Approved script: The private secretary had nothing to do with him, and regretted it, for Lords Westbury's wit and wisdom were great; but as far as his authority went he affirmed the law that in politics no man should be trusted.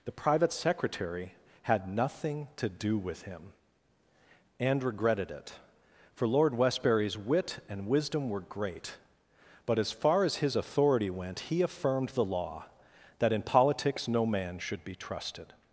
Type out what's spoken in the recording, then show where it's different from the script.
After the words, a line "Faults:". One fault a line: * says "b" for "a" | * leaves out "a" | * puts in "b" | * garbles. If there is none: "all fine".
The private secretary had nothing to do with him, and regretted it, for Lord Westbury's wit and wisdom were great; but as far as his authority went he affirmed the law that in politics no man should be trusted.
Faults:
* says "Lord" for "Lords"